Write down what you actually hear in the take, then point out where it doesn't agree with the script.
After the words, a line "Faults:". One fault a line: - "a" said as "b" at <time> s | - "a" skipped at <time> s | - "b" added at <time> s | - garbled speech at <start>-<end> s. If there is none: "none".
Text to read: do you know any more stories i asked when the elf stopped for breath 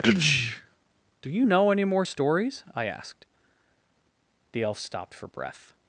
do you know any more stories i asked the elf stopped for breath
Faults:
- "when" skipped at 3.2 s